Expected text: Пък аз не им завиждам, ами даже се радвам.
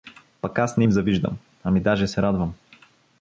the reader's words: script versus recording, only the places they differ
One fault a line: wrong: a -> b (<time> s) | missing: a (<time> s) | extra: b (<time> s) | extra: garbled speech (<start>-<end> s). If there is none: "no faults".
no faults